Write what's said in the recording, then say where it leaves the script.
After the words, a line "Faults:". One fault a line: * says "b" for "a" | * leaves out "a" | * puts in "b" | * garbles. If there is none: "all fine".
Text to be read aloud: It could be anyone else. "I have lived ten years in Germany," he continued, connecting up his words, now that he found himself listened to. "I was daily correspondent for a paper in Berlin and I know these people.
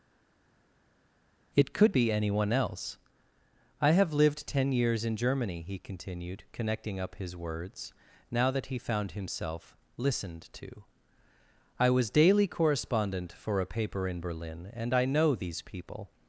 It could be anyone else. "I have lived ten years in Germany," he continued, connecting up his words, now that he found himself listened to. "I was daily correspondent for a paper in Berlin and I know these people.
Faults:
all fine